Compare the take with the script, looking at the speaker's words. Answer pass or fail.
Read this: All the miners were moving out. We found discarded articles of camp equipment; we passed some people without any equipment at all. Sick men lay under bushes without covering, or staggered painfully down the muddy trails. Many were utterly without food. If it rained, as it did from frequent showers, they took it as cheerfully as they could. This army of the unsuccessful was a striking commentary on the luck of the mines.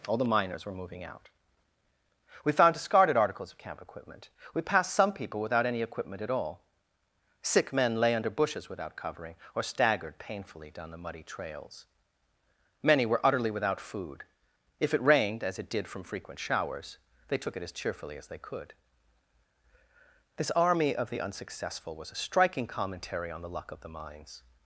pass